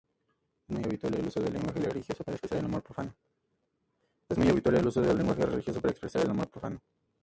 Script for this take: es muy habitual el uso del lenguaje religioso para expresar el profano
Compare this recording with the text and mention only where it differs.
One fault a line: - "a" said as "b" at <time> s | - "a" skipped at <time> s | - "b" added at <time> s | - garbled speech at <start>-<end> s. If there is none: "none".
- "amor" added at 6.3 s